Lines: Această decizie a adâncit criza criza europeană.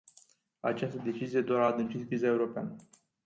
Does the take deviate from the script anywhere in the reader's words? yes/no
yes